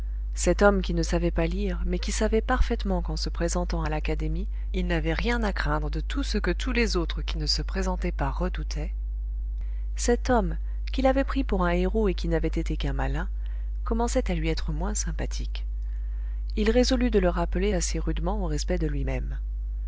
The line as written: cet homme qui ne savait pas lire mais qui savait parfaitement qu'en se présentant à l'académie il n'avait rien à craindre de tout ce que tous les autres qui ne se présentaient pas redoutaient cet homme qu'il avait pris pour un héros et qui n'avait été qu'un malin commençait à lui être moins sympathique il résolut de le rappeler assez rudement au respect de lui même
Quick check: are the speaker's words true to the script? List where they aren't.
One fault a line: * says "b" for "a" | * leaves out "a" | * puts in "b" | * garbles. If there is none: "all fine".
all fine